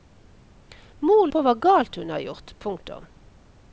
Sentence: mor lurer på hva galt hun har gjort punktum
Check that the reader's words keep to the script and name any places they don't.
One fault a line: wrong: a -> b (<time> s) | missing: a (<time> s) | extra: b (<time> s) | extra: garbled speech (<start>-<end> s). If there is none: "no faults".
missing: lurer (1.3 s)